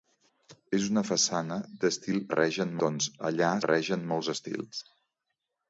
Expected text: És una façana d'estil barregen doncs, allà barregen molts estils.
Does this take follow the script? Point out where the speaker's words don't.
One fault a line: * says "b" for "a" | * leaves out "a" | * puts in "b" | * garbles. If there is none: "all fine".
all fine